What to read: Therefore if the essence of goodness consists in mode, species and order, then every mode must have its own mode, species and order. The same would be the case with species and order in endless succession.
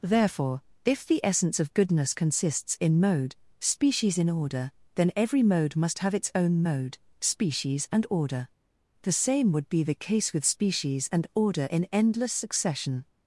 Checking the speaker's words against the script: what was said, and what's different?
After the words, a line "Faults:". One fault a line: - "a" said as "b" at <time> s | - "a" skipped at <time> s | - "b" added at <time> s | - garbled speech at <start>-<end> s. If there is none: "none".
Therefore if the essence of goodness consists in mode, species in order, then every mode must have its own mode, species and order. The same would be the case with species and order in endless succession.
Faults:
- "and" said as "in" at 4.2 s